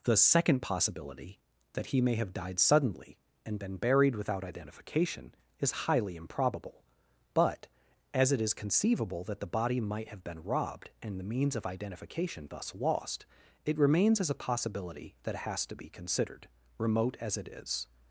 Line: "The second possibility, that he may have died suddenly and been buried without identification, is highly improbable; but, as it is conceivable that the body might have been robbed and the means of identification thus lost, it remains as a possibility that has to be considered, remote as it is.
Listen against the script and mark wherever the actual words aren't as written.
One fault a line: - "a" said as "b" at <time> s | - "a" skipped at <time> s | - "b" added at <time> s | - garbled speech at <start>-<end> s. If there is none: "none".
none